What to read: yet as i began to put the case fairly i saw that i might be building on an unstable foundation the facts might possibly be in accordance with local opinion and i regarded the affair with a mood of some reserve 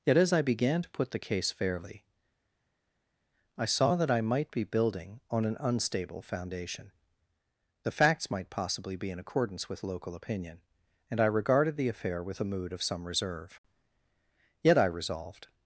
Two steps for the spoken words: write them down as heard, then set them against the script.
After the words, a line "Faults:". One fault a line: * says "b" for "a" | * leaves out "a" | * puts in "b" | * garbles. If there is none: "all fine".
yet as i began to put the case fairly i saw that i might be building on an unstable foundation the facts might possibly be in accordance with local opinion and i regarded the affair with a mood of some reserve yet i resolved
Faults:
* puts in "yet i resolved"